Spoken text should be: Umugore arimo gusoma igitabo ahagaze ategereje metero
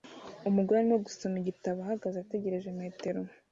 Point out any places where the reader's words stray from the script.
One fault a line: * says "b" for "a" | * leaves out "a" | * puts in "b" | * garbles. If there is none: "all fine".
all fine